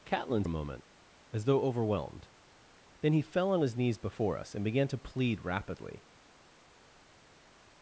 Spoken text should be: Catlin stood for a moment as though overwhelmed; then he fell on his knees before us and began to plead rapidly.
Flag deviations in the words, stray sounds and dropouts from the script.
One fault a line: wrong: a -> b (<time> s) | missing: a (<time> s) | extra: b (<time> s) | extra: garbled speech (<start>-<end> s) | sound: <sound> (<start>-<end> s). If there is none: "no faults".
missing: stood for (0.5 s)